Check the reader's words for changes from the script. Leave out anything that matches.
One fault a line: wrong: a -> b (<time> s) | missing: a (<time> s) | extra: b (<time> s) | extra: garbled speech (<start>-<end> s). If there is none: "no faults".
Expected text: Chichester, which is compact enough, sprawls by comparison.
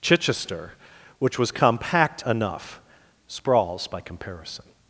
wrong: is -> was (1.4 s)